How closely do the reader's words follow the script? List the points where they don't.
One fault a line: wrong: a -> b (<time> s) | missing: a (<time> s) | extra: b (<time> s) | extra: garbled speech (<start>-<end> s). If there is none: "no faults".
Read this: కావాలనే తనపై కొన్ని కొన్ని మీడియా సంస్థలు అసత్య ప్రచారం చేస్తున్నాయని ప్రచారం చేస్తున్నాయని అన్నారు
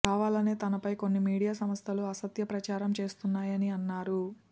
missing: కొన్ని (1.2 s)
missing: ప్రచారం చేస్తున్నాయని (3.7 s)